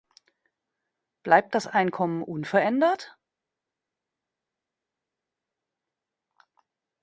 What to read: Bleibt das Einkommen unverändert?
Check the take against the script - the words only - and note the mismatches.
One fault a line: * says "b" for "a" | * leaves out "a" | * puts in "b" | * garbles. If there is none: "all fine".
all fine